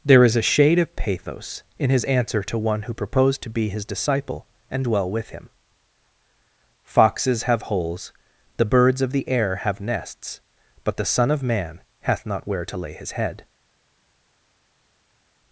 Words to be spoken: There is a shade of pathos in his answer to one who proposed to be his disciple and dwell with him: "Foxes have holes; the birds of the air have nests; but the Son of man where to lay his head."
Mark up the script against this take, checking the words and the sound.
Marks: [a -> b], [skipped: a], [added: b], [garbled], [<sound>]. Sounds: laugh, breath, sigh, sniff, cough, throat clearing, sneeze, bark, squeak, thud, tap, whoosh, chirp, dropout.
There is a shade of pathos in his answer to one who proposed to be his disciple and dwell with him: "Foxes have holes; the birds of the air have nests; but the Son of man [added: hath not] where to lay his head."